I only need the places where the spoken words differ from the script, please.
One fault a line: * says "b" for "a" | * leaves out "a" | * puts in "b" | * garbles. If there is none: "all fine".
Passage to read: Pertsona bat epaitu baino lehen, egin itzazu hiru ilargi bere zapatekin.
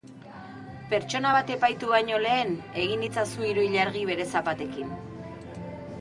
all fine